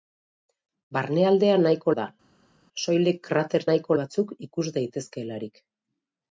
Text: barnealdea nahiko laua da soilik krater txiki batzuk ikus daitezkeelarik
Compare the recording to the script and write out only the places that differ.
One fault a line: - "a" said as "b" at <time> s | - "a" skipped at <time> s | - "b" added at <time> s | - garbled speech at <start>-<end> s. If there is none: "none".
- "laua" skipped at 1.9 s
- "txiki" said as "nahiko" at 3.7 s